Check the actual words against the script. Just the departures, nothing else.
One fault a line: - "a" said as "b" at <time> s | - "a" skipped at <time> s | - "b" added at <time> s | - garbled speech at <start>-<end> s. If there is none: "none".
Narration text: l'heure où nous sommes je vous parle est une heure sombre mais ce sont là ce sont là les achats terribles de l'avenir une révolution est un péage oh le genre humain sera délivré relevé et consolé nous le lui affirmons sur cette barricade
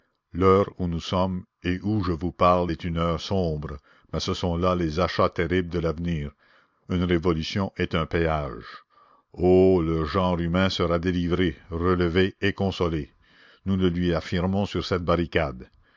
- "et où" added at 1.6 s
- "ce sont là" skipped at 4.8 s